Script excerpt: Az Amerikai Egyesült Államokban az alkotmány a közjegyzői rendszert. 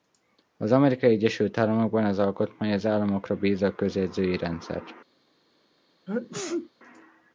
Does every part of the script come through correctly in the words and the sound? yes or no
no